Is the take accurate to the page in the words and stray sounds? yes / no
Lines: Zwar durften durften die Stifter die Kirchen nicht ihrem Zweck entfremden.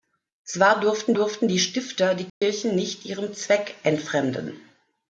no